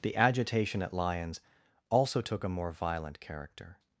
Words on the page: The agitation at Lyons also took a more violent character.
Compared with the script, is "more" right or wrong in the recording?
right